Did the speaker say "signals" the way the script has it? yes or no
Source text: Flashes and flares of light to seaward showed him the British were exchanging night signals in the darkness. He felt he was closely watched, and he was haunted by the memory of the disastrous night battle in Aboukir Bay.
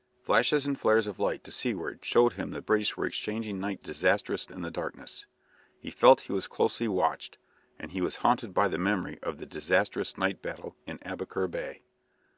no